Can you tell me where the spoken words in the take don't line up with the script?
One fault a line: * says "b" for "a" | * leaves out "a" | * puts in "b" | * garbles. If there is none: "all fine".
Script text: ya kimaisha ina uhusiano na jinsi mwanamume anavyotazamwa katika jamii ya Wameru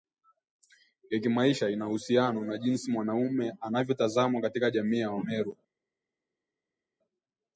all fine